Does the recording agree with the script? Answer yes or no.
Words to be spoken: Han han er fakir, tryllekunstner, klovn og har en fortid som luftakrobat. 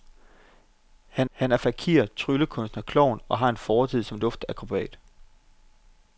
yes